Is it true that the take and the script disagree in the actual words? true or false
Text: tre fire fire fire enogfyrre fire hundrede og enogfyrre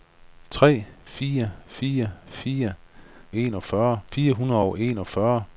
false